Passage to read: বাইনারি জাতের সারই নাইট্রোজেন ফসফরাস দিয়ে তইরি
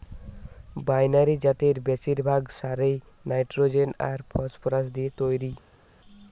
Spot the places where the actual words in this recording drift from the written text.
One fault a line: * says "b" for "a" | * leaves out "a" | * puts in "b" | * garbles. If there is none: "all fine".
* puts in "বেশিরভাগ"
* puts in "আর"